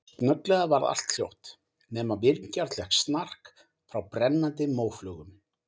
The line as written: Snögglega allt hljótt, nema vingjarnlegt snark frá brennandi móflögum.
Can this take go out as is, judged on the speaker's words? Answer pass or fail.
fail